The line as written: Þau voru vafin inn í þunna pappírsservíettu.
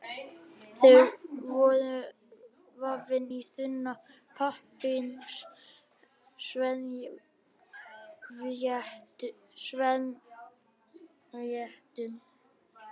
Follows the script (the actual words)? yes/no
no